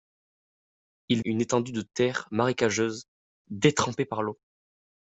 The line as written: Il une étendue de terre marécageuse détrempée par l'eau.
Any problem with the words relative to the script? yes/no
no